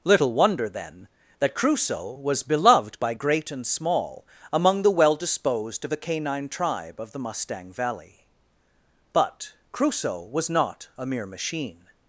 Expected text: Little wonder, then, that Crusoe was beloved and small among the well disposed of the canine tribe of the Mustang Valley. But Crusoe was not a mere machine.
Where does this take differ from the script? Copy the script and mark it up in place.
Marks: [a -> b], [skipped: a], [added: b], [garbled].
Little wonder, then, that Crusoe was beloved [added: by great] and small among the well disposed of the canine tribe of the Mustang Valley. But Crusoe was not a mere machine.